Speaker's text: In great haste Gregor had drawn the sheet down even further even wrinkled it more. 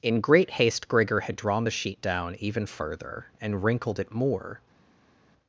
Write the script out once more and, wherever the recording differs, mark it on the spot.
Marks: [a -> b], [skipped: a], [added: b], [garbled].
In great haste Gregor had drawn the sheet down even further [even -> and] wrinkled it more.